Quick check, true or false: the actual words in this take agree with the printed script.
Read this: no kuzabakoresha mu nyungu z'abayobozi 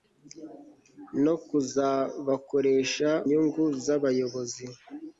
false